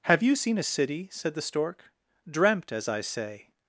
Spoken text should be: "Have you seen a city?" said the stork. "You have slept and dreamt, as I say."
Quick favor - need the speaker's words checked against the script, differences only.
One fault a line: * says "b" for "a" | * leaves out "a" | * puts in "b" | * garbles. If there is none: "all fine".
* leaves out "You have slept and"